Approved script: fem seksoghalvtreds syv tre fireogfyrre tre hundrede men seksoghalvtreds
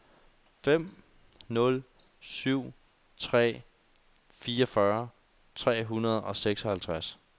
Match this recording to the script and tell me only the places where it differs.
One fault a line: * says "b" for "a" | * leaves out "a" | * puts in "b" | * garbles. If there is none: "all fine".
* says "nul" for "seksoghalvtreds"
* says "og" for "men"